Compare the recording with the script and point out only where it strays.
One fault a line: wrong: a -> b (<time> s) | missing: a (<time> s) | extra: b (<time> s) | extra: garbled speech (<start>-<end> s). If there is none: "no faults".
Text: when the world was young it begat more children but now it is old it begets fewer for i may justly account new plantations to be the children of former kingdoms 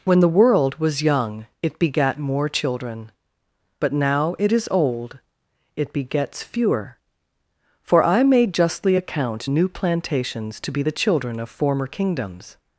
no faults